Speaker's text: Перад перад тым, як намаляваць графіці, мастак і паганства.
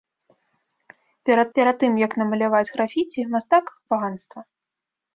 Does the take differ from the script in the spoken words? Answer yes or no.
no